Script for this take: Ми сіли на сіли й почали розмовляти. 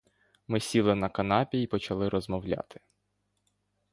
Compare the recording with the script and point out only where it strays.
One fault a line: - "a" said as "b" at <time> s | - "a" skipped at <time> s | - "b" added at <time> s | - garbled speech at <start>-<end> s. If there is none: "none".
- "сіли" said as "канапі" at 1.1 s